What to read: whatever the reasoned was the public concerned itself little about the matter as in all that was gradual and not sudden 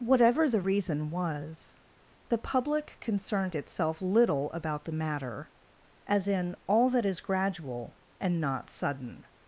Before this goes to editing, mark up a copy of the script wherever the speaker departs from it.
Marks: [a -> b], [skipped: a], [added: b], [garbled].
whatever the [reasoned -> reason] was the public concerned itself little about the matter as in all that [was -> is] gradual and not sudden